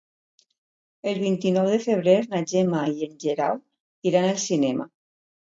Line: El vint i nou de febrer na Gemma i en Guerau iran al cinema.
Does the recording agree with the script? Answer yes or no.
yes